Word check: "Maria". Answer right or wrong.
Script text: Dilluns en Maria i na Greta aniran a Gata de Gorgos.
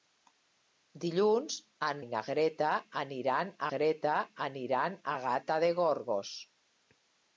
wrong